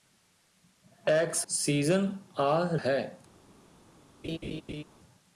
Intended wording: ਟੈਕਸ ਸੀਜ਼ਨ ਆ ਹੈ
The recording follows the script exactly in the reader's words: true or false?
true